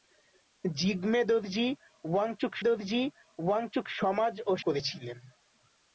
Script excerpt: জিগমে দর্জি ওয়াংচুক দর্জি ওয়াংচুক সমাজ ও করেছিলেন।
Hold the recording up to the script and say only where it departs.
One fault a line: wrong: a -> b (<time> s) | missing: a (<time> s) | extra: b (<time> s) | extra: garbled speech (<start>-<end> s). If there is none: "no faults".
no faults